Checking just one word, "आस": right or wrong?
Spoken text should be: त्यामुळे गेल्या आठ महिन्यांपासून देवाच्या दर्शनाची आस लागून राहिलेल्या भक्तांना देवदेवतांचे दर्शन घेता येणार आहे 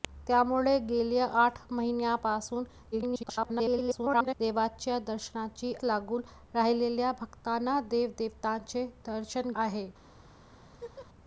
wrong